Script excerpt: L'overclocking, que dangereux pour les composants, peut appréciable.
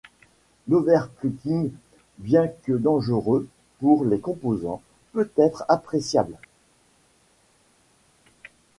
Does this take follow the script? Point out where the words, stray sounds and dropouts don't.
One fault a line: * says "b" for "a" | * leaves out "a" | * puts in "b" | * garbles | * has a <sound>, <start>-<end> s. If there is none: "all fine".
* puts in "bien"
* puts in "être"